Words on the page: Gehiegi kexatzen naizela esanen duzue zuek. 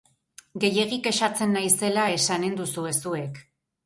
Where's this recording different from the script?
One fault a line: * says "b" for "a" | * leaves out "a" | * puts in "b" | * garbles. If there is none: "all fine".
all fine